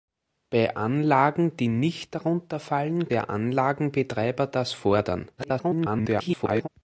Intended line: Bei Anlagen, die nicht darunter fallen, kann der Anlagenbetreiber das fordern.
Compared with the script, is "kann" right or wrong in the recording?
wrong